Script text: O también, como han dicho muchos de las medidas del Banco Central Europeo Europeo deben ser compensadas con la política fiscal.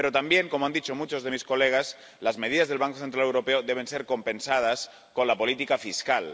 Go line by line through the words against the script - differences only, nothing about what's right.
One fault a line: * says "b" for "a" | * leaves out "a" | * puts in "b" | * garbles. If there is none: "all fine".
* says "Pero" for "O"
* puts in "mis colegas"
* leaves out "Europeo"